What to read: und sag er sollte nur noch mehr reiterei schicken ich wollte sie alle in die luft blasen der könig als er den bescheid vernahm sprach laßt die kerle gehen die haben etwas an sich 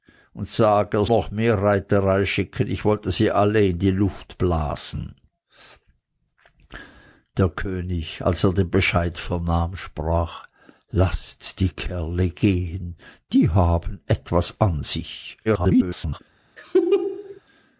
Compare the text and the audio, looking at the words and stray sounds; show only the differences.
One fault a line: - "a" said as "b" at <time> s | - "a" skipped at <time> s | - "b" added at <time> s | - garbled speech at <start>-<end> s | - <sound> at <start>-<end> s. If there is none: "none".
- "sollte nur" skipped at 1.1 s
- garbled speech at 15.4-16.2 s
- laugh at 16.6-17.4 s